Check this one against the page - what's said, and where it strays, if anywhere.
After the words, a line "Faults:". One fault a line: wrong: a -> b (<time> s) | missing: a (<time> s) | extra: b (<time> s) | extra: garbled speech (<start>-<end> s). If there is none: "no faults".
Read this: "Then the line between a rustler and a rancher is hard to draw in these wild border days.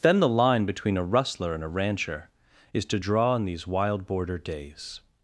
"Then the line between a rustler and a rancher is to draw in these wild border days.
Faults:
missing: hard (2.9 s)